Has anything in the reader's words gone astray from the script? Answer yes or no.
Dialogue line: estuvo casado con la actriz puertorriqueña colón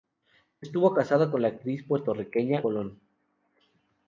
no